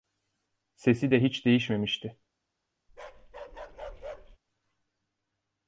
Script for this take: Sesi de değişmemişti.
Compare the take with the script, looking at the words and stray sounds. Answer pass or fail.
fail